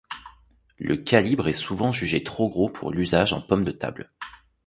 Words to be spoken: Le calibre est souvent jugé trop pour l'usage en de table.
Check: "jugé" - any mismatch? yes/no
no